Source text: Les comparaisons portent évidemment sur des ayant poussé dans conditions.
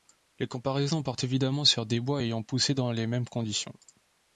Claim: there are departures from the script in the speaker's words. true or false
true